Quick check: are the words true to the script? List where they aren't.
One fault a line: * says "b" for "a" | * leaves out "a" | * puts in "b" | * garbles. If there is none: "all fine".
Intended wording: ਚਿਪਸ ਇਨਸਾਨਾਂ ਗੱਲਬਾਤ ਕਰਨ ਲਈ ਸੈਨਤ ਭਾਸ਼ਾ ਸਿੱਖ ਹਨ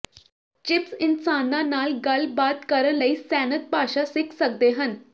* puts in "ਨਾਲ"
* puts in "ਸਕਦੇ"